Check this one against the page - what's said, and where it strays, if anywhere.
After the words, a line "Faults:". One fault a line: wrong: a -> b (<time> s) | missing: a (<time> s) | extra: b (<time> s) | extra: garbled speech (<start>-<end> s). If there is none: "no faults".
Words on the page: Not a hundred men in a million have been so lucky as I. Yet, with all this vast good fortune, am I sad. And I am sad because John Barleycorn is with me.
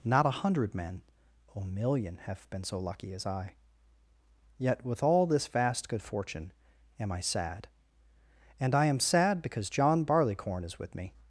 Not a hundred men a million have been so lucky as I. Yet, with all this vast good fortune, am I sad. And I am sad because John Barleycorn is with me.
Faults:
missing: in (1.0 s)